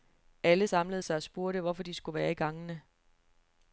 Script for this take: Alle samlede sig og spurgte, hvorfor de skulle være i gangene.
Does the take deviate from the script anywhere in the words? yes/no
no